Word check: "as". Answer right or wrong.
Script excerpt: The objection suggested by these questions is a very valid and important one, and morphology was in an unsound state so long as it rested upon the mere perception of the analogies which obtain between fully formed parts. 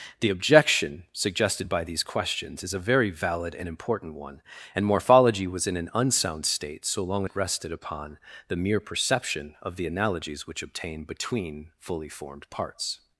wrong